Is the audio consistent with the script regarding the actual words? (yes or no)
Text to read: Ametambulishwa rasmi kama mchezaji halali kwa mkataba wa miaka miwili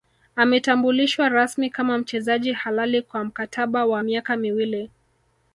yes